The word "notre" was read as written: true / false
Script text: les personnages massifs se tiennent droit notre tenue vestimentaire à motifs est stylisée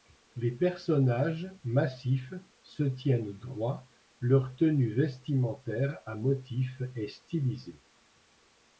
false